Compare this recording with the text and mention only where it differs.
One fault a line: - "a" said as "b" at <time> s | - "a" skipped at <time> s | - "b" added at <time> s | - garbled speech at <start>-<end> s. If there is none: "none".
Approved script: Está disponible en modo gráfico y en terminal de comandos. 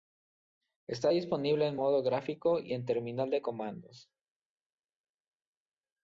none